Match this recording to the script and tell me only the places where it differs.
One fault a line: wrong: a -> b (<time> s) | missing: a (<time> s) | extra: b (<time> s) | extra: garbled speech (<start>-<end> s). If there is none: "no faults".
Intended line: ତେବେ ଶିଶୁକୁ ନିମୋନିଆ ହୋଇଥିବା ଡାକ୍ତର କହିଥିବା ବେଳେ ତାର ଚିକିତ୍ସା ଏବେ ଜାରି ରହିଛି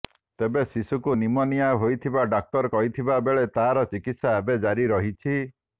no faults